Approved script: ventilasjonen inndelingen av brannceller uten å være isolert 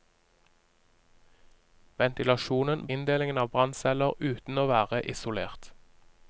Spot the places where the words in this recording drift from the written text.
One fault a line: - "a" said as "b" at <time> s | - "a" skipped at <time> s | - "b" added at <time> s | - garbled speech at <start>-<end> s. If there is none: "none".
none